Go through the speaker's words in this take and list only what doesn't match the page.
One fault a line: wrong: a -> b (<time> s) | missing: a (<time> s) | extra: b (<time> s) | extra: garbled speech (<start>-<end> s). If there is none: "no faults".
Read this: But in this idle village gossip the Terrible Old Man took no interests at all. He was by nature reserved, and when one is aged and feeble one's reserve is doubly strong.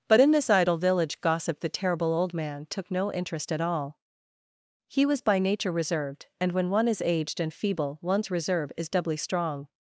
wrong: interests -> interest (3.1 s)